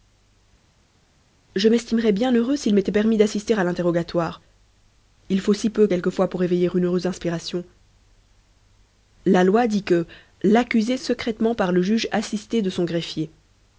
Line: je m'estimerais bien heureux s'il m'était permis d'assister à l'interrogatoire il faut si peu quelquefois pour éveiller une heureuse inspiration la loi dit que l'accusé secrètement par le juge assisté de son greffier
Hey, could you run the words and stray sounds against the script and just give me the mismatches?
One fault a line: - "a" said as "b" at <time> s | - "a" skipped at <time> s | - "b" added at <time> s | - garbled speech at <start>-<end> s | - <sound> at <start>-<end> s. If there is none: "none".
none